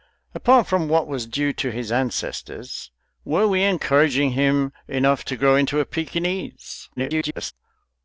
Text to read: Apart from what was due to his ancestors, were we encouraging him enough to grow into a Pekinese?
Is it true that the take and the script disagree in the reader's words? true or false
true